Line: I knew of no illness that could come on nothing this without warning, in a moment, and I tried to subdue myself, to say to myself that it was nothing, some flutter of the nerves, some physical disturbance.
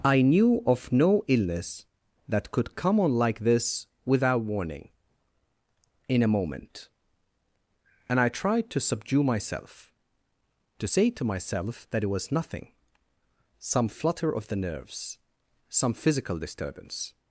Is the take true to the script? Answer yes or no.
no